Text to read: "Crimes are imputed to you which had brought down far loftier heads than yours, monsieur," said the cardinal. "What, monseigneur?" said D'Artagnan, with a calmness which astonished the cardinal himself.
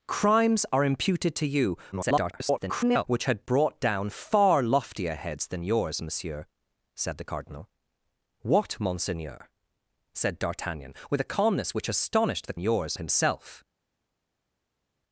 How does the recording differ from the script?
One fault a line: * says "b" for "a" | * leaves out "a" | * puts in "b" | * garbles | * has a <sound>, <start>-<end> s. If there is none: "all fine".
* garbles
* says "yours" for "cardinal"